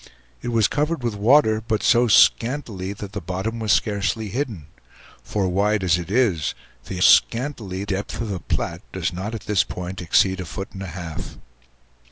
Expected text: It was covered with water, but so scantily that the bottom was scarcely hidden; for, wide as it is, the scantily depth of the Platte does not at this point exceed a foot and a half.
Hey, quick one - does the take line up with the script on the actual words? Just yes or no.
yes